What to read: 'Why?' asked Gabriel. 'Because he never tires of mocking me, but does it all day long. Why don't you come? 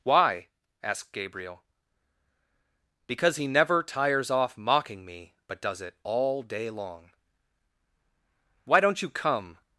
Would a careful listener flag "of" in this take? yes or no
yes